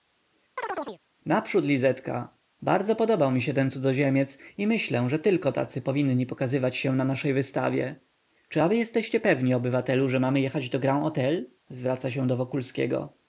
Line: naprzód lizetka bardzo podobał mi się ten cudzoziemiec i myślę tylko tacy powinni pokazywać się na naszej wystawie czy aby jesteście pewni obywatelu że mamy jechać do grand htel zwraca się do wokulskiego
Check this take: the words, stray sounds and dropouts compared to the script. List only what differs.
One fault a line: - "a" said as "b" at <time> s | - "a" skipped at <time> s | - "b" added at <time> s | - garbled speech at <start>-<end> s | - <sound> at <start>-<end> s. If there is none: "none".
- chirp at 0.6-1.0 s
- "że" added at 5.1 s